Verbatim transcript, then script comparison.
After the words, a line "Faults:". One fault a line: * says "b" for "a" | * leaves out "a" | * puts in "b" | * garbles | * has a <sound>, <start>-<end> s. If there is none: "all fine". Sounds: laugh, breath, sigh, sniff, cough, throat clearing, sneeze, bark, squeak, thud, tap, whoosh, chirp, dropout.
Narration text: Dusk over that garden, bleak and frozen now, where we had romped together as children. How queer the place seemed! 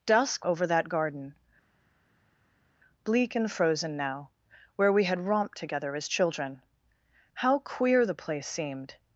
Dusk over that garden, bleak and frozen now, where we had romped together as children. How queer the place seemed!
Faults:
all fine